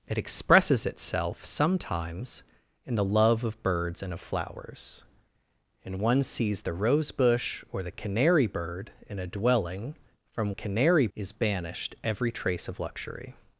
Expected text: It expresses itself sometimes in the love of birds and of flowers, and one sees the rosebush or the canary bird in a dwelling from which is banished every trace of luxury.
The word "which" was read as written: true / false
false